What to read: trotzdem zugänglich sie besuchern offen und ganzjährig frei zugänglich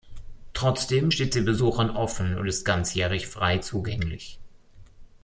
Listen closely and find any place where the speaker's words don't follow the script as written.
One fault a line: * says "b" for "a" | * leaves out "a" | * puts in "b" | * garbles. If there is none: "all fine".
* says "steht" for "zugänglich"
* puts in "ist"